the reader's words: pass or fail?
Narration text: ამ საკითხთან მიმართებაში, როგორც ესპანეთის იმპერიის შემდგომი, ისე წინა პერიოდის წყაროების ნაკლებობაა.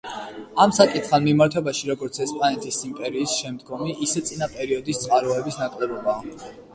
pass